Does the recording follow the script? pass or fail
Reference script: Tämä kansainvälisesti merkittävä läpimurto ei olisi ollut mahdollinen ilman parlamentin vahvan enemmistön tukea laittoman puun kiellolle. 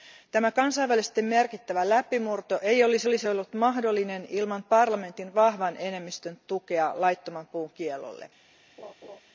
fail